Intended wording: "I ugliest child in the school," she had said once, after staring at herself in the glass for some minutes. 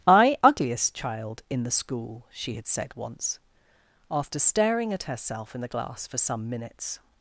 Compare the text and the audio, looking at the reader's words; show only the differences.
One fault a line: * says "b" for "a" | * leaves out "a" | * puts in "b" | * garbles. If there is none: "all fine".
all fine